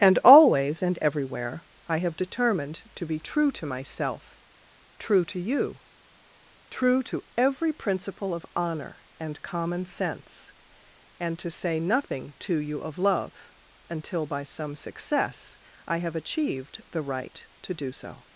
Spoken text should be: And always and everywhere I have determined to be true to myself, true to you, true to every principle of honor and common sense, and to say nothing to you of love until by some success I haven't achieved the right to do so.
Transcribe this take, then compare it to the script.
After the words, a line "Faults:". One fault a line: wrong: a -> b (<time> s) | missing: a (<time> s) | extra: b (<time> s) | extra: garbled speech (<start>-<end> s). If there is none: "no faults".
And always and everywhere I have determined to be true to myself, true to you, true to every principle of honor and common sense, and to say nothing to you of love until by some success I have achieved the right to do so.
Faults:
wrong: haven't -> have (16.0 s)